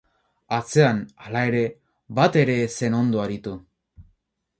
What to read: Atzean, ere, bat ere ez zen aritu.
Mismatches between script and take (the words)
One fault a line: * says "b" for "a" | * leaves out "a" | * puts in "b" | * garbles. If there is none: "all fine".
* puts in "hala"
* puts in "ondo"